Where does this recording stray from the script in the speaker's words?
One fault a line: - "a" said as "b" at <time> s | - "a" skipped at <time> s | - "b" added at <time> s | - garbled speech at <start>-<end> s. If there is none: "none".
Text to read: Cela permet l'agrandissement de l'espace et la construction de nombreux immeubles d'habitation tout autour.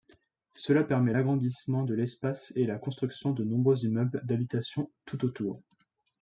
none